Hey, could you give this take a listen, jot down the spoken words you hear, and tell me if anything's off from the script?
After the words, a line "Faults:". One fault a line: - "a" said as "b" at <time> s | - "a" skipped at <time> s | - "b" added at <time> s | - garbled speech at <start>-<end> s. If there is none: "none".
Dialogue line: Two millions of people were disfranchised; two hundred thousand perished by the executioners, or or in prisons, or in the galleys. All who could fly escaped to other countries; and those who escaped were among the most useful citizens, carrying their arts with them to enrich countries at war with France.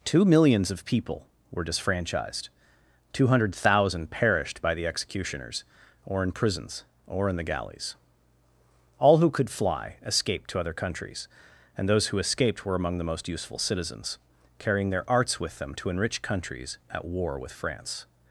Two millions of people were disfranchised; two hundred thousand perished by the executioners, or in prisons, or in the galleys. All who could fly escaped to other countries; and those who escaped were among the most useful citizens, carrying their arts with them to enrich countries at war with France.
Faults:
- "or" skipped at 6.2 s